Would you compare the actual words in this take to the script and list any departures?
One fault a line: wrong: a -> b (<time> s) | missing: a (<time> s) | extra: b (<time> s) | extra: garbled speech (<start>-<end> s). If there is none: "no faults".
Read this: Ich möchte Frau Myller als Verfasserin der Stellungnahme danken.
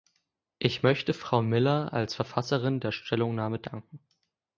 no faults